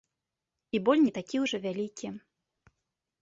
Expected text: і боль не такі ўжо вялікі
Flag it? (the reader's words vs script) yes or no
no